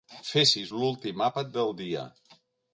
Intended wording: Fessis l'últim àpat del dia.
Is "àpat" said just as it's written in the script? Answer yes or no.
yes